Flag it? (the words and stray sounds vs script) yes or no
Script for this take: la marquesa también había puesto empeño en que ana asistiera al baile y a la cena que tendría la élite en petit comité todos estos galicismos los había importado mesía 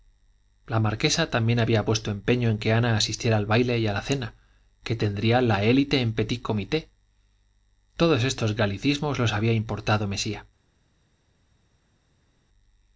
no